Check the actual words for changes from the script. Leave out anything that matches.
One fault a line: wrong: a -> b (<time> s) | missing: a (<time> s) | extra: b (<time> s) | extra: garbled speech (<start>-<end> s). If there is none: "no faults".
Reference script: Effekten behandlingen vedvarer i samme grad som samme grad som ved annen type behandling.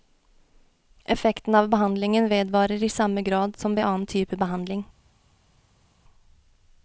extra: av (1.6 s)
missing: samme grad som (3.8 s)